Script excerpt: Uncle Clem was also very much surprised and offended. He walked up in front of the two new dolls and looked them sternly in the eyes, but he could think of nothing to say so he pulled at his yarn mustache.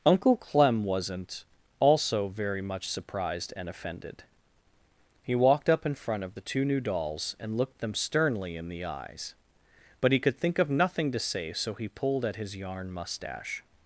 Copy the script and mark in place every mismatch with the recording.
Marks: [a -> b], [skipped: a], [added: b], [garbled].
Uncle Clem [was -> wasn't] also very much surprised and offended. He walked up in front of the two new dolls and looked them sternly in the eyes, but he could think of nothing to say so he pulled at his yarn mustache.